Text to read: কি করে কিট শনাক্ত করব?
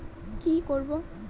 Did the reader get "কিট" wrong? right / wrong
wrong